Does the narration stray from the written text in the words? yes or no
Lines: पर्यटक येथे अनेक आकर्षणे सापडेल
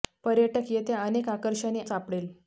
no